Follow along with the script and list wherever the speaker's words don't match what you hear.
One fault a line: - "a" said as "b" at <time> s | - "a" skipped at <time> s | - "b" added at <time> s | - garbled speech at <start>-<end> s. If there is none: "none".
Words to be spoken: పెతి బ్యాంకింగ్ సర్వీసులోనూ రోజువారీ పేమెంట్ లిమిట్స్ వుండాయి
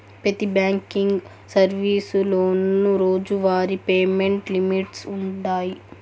none